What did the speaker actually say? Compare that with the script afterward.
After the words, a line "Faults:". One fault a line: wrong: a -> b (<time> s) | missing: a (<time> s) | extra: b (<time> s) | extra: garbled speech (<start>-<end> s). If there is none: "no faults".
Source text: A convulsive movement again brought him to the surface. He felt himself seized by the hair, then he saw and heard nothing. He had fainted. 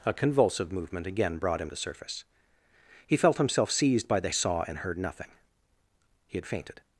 A convulsive movement again brought him the surface. He felt himself seized by the saw and heard nothing. He had fainted.
Faults:
missing: to (1.7 s)
missing: hair then he (4.3 s)